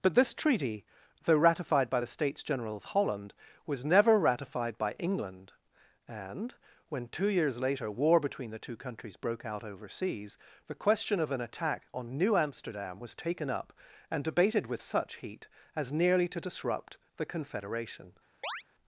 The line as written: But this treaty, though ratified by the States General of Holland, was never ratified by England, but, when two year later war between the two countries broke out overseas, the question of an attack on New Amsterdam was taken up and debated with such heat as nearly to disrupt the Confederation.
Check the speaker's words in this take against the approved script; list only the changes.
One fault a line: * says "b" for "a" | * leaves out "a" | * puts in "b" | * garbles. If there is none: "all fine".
* says "and" for "but"
* says "years" for "year"